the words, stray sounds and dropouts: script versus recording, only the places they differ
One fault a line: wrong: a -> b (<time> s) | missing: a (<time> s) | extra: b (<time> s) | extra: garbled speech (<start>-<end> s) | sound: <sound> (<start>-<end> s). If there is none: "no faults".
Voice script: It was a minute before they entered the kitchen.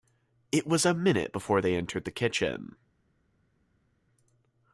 no faults